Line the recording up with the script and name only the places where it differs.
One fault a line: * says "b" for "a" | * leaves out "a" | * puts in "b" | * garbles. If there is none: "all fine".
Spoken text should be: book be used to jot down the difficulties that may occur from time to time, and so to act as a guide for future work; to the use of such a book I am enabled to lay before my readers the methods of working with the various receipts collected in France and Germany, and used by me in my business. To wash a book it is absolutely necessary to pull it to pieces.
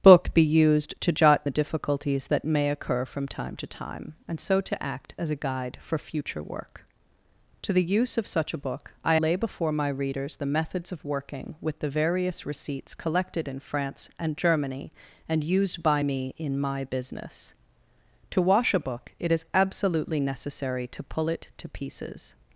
* leaves out "down"
* leaves out "am enabled to"